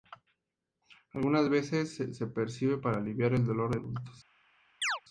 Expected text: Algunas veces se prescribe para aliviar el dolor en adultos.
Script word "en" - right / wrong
wrong